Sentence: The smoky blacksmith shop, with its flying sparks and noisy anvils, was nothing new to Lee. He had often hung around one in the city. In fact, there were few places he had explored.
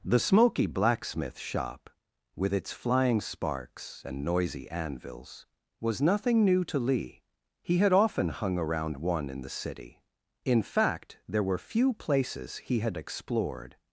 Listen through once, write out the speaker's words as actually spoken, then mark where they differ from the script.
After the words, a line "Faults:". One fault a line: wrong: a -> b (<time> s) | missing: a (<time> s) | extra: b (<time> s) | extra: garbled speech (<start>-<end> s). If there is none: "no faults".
The smoky blacksmith shop, with its flying sparks and noisy anvils, was nothing new to Lee. He had often hung around one in the city. In fact, there were few places he had explored.
Faults:
no faults